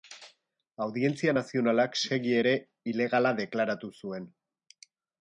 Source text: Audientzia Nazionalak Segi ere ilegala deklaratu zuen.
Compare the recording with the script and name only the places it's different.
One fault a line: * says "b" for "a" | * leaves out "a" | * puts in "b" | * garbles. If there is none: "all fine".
all fine